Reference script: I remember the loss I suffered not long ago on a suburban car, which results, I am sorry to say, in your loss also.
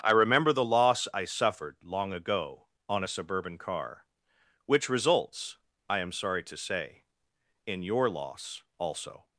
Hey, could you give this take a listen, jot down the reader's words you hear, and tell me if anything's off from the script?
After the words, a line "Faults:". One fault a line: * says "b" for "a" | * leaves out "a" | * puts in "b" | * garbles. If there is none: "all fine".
I remember the loss I suffered long ago on a suburban car, which results, I am sorry to say, in your loss also.
Faults:
* leaves out "not"